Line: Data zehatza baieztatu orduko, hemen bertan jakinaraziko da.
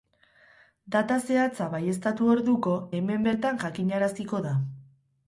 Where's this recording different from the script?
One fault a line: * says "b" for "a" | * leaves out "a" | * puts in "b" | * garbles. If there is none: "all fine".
all fine